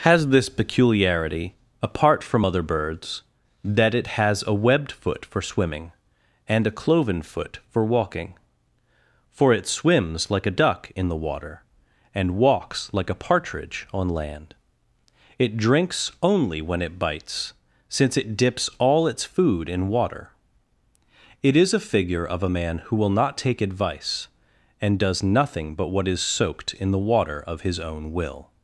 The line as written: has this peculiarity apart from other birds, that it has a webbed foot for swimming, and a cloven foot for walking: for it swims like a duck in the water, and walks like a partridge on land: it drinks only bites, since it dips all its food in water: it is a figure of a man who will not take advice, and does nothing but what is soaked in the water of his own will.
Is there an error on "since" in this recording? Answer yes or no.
no